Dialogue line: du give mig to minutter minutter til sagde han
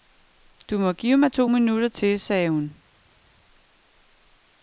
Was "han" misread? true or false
true